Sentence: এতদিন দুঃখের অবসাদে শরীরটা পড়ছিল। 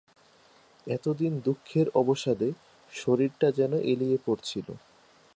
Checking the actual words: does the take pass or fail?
fail